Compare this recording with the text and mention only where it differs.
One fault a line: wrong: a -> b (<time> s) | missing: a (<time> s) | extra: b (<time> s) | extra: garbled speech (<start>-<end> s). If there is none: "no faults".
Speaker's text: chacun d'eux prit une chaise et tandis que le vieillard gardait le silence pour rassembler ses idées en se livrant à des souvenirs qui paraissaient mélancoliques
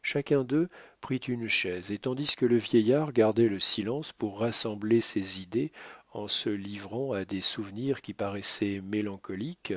no faults